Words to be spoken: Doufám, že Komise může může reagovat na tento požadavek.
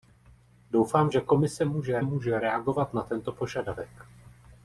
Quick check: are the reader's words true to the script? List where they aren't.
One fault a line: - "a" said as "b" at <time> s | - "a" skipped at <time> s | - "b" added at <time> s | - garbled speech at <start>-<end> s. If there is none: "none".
none